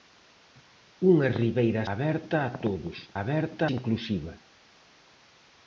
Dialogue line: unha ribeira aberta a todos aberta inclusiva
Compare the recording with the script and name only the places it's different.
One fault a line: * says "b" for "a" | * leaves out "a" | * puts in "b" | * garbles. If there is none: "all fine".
all fine